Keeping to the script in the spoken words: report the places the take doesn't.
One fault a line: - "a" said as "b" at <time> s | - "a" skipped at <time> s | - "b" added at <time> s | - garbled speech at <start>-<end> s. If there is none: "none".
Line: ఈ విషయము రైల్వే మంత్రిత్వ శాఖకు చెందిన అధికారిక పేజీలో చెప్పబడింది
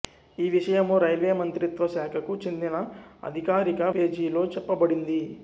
none